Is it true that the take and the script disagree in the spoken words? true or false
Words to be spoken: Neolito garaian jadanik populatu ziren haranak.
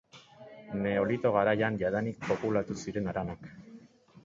false